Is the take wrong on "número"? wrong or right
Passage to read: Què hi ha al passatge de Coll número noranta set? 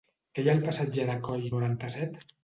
wrong